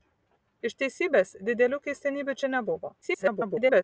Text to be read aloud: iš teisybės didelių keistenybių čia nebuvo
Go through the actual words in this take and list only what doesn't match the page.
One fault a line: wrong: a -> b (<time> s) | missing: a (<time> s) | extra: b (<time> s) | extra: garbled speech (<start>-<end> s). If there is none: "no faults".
extra: garbled speech (3.0-3.8 s)